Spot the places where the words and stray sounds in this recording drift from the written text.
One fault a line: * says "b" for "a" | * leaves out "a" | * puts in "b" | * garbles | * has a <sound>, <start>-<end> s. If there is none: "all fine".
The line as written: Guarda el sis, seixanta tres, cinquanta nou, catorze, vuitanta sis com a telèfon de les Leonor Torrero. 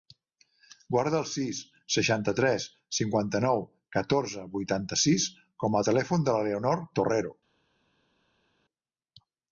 * says "la" for "les"